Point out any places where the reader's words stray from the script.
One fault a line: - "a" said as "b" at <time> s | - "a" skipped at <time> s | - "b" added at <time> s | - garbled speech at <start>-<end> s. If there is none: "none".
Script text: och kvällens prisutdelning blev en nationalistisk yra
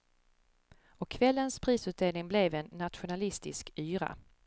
none